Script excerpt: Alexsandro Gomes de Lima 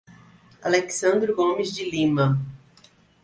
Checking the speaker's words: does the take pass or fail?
pass